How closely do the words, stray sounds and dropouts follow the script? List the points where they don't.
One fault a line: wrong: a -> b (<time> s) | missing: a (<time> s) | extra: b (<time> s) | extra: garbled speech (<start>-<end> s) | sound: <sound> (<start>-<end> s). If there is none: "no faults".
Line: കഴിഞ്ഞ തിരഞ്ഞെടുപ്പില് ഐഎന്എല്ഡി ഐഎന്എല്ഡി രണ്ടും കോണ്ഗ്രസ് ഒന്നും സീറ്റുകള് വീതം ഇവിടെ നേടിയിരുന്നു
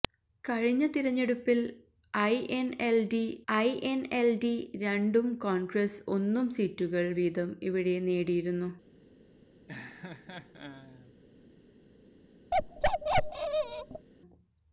sound: laugh (9.7-11.1 s)
sound: bark (12.5-14.1 s)